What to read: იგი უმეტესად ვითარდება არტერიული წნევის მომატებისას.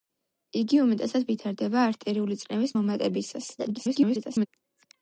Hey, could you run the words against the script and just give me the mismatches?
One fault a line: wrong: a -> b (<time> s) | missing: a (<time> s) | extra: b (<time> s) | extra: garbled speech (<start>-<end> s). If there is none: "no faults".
extra: garbled speech (3.6-4.5 s)